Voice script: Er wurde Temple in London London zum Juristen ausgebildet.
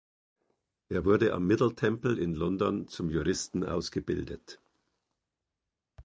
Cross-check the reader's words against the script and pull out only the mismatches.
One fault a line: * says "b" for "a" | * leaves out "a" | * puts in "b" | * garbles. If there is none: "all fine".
* puts in "am Middle"
* leaves out "London"